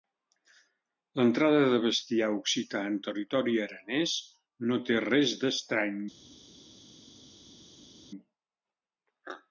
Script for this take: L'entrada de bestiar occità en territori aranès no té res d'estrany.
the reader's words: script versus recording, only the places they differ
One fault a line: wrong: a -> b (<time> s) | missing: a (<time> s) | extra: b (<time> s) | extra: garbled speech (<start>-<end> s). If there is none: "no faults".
no faults